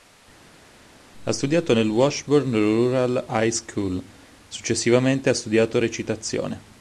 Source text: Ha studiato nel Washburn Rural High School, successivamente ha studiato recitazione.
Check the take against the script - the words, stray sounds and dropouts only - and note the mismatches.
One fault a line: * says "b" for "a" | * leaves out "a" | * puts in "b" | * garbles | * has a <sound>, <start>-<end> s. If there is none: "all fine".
all fine